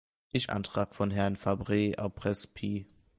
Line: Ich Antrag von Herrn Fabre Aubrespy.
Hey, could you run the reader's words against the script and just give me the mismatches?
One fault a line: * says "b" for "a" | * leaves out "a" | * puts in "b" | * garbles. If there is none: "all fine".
all fine